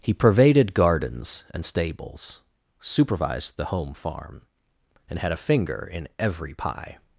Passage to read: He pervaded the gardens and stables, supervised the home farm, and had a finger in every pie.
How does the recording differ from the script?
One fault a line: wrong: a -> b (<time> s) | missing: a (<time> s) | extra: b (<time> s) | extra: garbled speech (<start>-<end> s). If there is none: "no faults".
missing: the (0.7 s)